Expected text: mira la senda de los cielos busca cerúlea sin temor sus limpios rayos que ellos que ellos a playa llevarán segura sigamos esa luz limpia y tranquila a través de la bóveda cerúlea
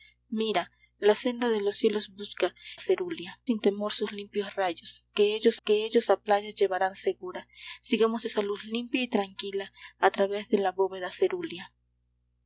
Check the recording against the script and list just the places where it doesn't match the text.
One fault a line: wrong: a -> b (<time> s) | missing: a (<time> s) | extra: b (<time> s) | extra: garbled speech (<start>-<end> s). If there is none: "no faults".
no faults